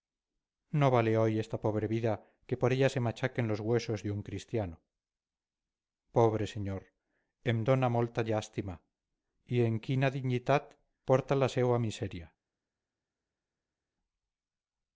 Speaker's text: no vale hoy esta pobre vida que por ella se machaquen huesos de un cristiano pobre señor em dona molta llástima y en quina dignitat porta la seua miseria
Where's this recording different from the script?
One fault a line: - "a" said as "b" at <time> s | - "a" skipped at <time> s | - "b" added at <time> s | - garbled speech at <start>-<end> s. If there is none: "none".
- "los" added at 3.5 s